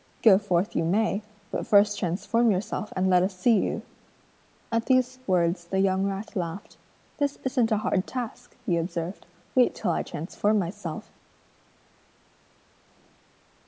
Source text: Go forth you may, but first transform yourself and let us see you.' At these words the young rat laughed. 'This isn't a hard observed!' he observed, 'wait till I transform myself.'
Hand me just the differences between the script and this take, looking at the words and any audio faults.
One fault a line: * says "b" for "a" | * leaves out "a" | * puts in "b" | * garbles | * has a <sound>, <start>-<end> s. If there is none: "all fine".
* says "task" for "observed"